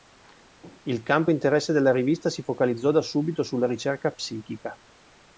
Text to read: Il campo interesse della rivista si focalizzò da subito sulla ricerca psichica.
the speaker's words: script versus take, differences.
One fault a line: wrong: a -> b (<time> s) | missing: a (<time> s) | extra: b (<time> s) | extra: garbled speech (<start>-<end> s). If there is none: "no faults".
no faults